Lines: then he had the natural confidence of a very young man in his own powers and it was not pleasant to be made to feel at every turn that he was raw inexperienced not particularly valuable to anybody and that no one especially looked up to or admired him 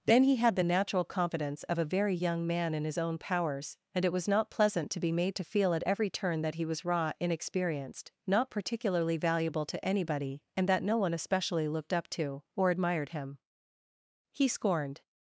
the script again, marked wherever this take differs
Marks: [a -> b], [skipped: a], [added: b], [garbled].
then he had the natural confidence of a very young man in his own powers and it was not pleasant to be made to feel at every turn that he was raw inexperienced not particularly valuable to anybody and that no one especially looked up to or admired him [added: he scorned]